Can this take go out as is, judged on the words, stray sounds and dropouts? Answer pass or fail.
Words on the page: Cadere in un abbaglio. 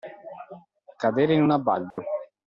fail